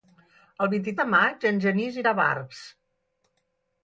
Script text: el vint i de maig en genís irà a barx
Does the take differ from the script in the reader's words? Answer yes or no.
no